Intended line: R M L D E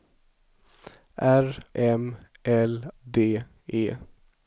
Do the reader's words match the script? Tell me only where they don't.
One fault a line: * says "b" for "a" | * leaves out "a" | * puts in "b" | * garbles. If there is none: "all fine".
all fine